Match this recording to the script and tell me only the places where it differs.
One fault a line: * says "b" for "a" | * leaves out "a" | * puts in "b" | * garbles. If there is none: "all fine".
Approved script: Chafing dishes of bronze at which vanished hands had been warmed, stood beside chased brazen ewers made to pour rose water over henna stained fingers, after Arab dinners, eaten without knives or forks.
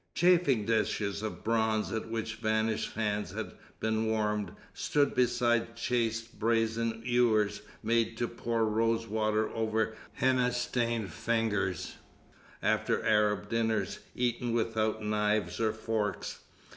all fine